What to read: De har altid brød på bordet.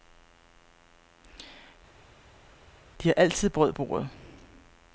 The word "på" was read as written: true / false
false